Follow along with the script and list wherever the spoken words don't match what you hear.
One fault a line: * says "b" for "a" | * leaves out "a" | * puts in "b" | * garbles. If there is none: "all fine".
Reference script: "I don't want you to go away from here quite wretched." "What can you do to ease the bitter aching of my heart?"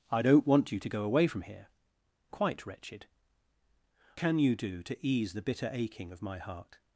* leaves out "What"